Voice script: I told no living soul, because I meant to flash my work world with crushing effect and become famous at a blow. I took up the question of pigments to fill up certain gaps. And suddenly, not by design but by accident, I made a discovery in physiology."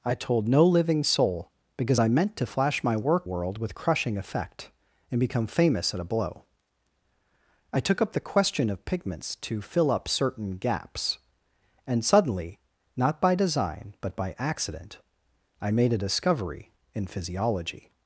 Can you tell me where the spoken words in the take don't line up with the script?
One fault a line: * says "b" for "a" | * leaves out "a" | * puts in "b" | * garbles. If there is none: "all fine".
all fine